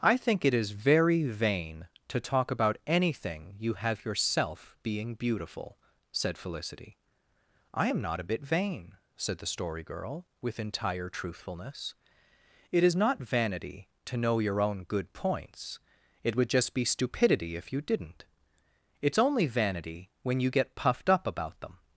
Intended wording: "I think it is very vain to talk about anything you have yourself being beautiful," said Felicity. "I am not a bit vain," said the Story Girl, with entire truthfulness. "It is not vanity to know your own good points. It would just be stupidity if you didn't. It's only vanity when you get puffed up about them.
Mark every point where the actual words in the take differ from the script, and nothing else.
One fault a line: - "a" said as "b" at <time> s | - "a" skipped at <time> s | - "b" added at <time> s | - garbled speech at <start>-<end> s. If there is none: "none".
none